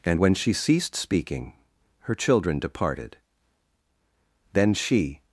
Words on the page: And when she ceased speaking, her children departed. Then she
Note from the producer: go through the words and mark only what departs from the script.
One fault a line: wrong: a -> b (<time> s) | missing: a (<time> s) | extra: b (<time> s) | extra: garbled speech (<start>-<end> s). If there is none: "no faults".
no faults